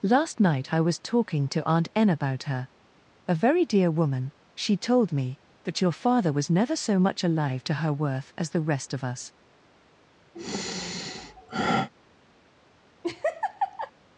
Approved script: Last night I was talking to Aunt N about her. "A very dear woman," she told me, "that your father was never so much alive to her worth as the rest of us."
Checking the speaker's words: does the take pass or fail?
pass